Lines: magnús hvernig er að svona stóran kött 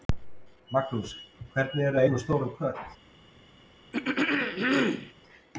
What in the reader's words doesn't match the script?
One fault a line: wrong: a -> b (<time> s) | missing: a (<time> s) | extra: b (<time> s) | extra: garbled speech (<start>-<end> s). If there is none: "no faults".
no faults